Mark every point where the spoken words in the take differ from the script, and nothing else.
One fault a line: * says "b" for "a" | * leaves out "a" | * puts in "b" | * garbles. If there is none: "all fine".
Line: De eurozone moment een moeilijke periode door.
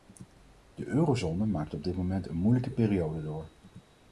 * puts in "maakt op dit"